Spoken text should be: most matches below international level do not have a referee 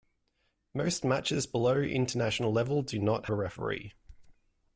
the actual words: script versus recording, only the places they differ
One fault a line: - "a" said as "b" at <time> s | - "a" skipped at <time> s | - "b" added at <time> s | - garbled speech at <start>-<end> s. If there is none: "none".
- "have" skipped at 3.3 s